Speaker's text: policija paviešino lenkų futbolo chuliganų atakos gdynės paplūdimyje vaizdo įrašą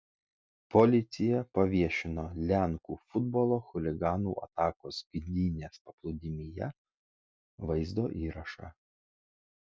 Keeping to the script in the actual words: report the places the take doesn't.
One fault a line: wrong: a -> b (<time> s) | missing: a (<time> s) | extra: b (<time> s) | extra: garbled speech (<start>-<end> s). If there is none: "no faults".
no faults